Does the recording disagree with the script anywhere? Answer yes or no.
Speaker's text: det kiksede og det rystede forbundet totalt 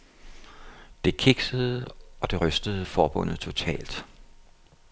no